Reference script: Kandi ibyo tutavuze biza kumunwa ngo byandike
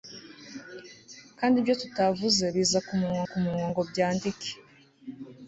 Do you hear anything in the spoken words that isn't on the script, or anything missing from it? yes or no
yes